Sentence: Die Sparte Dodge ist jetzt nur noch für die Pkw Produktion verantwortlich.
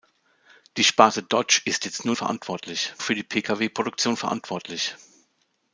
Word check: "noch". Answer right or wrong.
wrong